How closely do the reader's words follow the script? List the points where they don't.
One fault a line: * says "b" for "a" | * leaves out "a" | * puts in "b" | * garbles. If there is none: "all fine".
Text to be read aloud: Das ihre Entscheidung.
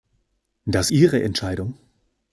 all fine